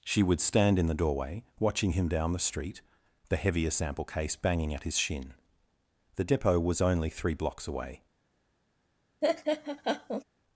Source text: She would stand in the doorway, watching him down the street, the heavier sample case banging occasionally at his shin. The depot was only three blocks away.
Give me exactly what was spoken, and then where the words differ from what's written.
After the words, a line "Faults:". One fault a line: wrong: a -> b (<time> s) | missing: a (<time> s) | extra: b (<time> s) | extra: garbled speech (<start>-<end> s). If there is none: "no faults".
She would stand in the doorway, watching him down the street, the heavier sample case banging at his shin. The depot was only three blocks away.
Faults:
missing: occasionally (4.7 s)